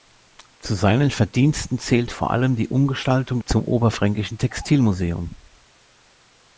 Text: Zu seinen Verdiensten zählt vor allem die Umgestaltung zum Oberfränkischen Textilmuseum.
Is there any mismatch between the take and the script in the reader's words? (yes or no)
no